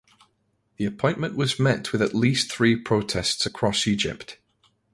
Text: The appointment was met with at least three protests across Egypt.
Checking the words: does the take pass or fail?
pass